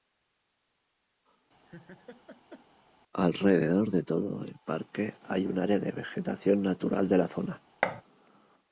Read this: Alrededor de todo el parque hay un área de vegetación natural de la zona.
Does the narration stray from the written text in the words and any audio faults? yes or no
yes